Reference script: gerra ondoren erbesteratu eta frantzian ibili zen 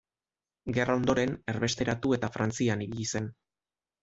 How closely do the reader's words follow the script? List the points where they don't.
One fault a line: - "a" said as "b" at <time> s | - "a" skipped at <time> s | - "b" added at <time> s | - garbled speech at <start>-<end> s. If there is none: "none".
none